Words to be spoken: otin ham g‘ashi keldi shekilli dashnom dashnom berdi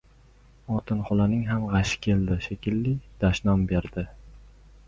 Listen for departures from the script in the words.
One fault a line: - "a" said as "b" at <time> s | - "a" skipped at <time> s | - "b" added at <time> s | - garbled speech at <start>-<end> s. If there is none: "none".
- "xolaning" added at 1.1 s
- "dashnom" skipped at 3.7 s